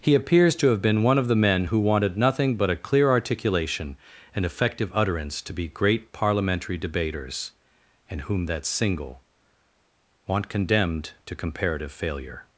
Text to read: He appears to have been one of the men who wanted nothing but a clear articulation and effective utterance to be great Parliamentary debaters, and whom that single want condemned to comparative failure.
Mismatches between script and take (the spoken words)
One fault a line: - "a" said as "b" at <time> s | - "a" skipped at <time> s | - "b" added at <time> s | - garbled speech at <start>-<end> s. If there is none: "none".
none